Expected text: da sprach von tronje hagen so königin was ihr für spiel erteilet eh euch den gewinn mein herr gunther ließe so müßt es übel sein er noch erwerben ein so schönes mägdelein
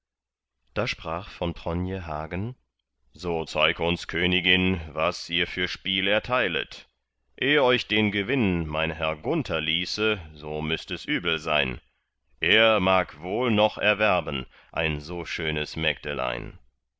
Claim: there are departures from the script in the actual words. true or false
true